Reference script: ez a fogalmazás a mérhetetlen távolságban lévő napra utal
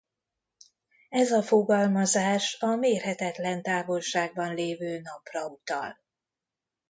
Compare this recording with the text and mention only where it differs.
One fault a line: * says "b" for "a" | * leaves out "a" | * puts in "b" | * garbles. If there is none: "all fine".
all fine